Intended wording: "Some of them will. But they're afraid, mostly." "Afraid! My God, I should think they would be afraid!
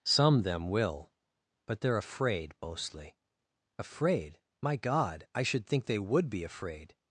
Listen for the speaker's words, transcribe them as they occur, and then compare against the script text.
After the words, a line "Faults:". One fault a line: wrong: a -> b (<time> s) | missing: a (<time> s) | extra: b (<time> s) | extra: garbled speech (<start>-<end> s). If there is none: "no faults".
"Some them will. But they're afraid, mostly." "Afraid! My God, I should think they would be afraid!
Faults:
missing: of (0.4 s)